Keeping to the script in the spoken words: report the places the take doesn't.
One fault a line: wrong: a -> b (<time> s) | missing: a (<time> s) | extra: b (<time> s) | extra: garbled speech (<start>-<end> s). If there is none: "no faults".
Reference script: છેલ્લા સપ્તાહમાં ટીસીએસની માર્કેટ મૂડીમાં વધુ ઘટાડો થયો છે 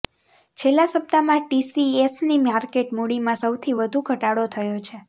extra: સૌથી (3.4 s)